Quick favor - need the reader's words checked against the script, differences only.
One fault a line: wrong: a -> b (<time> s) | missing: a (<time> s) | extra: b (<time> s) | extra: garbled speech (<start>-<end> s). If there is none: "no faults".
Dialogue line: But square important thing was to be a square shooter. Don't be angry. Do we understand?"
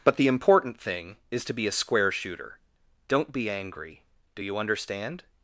wrong: square -> the (0.2 s)
wrong: was -> is (1.3 s)
wrong: we -> you (4.4 s)